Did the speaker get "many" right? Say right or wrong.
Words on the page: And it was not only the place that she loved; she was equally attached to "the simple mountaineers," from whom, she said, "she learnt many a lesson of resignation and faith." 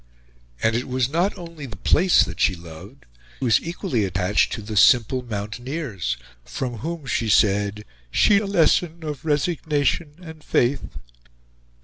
wrong